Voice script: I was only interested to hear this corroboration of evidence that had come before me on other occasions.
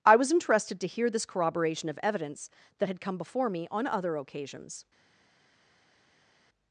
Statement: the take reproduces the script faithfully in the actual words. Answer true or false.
false